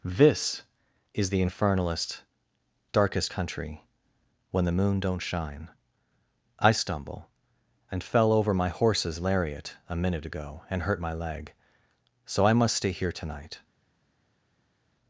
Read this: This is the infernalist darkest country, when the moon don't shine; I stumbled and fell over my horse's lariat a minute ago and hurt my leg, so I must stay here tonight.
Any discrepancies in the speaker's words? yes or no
yes